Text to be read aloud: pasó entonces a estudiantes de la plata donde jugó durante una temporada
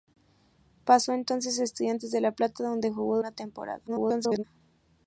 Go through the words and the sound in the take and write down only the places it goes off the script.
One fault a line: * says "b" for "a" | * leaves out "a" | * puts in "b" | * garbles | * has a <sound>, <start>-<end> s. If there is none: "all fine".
* leaves out "durante"
* garbles